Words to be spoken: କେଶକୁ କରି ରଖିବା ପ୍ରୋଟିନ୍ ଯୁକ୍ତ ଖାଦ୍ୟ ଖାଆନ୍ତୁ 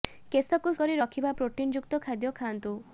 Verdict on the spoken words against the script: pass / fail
pass